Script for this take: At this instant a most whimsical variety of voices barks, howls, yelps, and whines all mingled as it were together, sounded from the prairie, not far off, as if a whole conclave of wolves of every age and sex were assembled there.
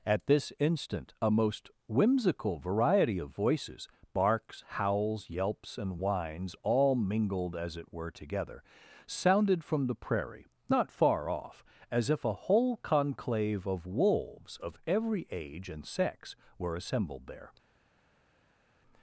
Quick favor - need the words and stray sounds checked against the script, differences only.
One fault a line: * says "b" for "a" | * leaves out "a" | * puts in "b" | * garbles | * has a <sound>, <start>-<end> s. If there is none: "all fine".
all fine